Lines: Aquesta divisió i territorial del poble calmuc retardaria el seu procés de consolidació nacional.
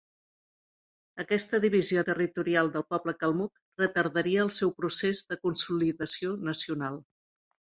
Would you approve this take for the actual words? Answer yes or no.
yes